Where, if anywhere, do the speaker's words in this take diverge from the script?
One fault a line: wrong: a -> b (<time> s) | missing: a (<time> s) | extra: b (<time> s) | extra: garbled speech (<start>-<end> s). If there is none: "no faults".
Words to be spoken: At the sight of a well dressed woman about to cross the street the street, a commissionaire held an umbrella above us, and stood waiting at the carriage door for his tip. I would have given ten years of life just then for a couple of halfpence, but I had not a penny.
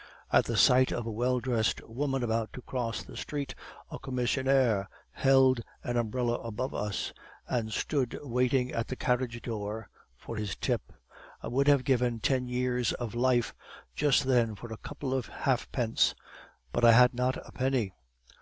missing: the street (3.5 s)